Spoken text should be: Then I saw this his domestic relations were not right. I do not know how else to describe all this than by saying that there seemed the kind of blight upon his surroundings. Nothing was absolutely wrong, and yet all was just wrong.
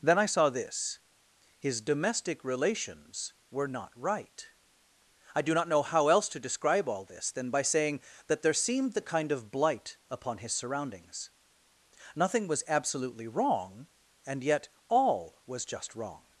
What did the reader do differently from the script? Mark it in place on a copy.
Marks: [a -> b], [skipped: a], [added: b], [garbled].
Then I saw this his domestic relations were not right. I do not know how else to describe all this than by saying that there seemed the kind of blight upon his surroundings. Nothing was absolutely wrong, and yet all was just wrong.